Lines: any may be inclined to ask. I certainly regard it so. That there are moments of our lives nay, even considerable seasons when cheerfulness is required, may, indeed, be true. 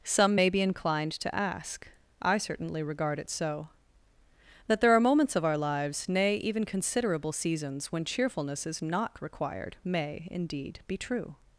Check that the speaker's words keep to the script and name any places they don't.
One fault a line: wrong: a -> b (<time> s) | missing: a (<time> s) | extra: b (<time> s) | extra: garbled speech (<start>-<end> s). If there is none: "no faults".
wrong: any -> some (0.0 s)
extra: not (8.8 s)